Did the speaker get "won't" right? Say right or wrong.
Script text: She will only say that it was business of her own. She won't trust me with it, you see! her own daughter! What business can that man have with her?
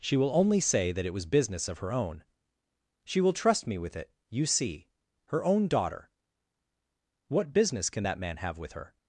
wrong